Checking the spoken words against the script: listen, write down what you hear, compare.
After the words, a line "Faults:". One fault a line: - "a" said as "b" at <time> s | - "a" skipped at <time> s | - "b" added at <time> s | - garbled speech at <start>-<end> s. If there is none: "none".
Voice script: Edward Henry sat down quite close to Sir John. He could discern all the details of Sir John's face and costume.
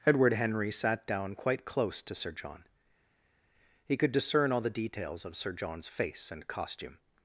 Edward Henry sat down quite close to Sir John. He could discern all the details of Sir John's face and costume.
Faults:
none